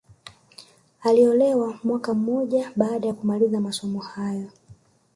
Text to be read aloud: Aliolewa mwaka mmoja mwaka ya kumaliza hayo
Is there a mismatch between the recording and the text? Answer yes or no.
yes